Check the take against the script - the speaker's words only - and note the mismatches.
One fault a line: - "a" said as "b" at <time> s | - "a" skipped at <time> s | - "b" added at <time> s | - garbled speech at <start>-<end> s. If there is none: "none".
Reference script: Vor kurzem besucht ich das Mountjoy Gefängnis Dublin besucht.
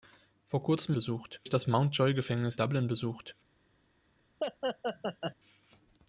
none